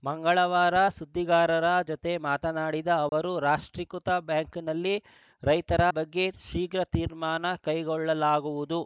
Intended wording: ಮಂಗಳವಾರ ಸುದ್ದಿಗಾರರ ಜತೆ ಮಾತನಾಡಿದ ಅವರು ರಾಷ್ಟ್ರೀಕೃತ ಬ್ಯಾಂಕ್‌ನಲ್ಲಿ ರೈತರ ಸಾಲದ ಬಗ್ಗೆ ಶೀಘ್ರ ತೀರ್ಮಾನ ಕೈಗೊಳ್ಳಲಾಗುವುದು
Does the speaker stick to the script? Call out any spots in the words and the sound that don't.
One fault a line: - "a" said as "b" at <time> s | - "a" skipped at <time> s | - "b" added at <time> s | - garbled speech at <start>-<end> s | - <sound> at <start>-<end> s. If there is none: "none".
- dropout at 3.1-3.1 s
- "ಸಾಲದ" skipped at 5.8 s